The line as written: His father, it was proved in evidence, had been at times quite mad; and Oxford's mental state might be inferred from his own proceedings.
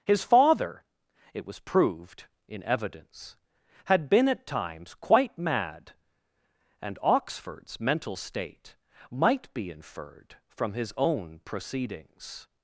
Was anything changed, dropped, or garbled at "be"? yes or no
no